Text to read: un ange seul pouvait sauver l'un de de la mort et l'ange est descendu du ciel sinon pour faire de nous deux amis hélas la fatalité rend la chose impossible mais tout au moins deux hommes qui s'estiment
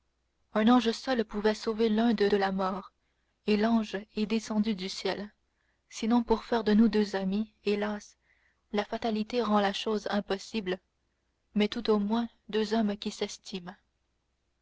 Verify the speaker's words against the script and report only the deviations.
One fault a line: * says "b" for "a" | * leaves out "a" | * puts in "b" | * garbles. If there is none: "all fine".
all fine